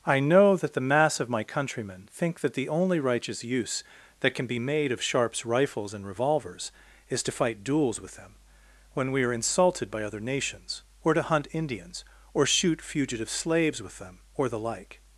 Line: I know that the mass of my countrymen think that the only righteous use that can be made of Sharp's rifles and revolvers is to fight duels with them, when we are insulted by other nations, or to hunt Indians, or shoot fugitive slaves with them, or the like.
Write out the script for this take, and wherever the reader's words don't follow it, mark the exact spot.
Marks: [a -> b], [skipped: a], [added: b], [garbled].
I know that the mass of my countrymen think that the only righteous use that can be made of Sharp's rifles and revolvers is to fight duels with them, when we are insulted by other nations, or to hunt Indians, or shoot fugitive slaves with them, or the like.